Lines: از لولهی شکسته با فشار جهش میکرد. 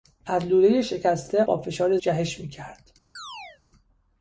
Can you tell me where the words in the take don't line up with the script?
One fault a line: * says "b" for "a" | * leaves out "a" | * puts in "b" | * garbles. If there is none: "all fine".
all fine